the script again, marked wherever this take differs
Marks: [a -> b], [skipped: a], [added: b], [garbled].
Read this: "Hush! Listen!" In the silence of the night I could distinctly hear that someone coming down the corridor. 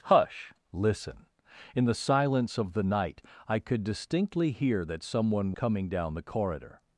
"Hush! Listen!" In the silence of the night I could distinctly hear that someone coming down the corridor.